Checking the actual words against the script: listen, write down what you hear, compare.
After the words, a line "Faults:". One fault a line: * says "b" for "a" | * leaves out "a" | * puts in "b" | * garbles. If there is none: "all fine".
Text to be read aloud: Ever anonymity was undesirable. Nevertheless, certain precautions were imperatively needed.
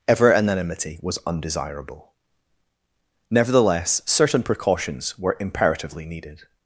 Ever anonymity was undesirable. Nevertheless, certain precautions were imperatively needed.
Faults:
all fine